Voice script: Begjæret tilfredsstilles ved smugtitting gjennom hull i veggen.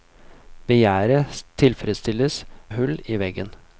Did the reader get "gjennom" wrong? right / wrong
wrong